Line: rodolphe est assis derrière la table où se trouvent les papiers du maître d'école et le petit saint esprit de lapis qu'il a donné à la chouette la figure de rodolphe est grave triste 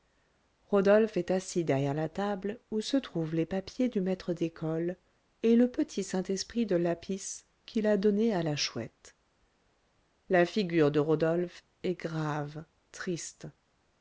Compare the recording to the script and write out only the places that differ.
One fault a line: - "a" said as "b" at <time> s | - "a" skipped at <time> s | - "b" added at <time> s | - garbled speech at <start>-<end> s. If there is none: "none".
none